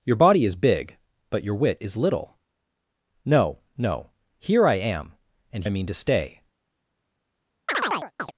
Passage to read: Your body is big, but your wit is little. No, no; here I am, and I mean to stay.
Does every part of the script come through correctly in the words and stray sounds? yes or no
no